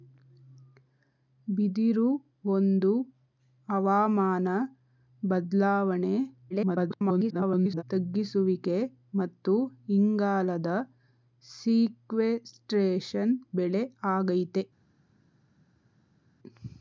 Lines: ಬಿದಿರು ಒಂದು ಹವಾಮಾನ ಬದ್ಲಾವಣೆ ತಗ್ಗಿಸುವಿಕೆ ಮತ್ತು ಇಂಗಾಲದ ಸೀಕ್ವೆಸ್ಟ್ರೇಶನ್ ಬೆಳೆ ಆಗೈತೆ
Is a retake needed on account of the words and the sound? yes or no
yes